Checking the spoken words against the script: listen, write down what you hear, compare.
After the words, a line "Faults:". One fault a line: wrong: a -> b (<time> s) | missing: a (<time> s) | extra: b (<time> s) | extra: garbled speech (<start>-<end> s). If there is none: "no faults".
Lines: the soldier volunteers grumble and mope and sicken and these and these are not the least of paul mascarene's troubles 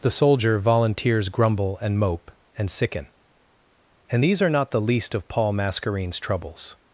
the soldier volunteers grumble and mope and sicken and these are not the least of paul mascarene's troubles
Faults:
missing: and these (4.4 s)